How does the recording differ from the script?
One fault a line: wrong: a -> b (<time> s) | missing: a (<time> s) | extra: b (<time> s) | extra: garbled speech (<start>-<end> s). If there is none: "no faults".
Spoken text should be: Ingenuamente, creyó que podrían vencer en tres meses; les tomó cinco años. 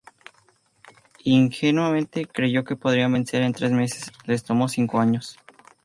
no faults